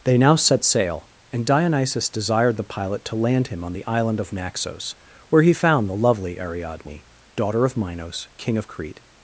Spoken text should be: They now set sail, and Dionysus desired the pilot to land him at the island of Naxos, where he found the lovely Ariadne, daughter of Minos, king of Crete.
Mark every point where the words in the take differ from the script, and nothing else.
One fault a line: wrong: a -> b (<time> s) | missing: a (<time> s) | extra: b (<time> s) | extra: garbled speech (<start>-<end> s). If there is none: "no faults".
wrong: at -> on (3.6 s)